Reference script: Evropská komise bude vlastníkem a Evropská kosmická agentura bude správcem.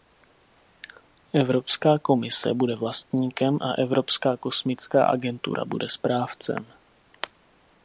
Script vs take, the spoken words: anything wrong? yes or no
no